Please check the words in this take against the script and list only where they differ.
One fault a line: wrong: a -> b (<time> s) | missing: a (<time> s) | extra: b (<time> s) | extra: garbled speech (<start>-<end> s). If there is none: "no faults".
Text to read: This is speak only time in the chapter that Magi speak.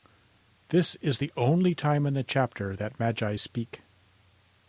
wrong: speak -> the (1.2 s)